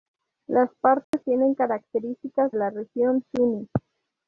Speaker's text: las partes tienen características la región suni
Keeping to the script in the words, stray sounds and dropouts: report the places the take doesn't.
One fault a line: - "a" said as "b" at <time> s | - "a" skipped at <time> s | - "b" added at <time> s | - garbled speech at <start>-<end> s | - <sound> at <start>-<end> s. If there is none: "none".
- dropout at 1.0-1.1 s